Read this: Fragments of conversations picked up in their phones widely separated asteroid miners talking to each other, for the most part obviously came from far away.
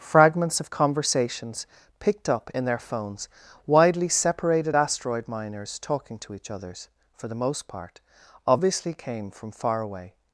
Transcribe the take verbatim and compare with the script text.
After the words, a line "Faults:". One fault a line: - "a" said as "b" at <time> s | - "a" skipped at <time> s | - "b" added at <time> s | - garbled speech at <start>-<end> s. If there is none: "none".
Fragments of conversations picked up in their phones widely separated asteroid miners talking to each others, for the most part obviously came from far away.
Faults:
- "other" said as "others" at 6.5 s